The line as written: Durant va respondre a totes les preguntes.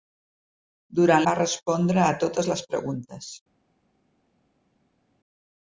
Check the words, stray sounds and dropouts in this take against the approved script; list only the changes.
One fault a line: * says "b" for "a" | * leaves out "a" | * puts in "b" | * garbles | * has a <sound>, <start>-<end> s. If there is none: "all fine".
all fine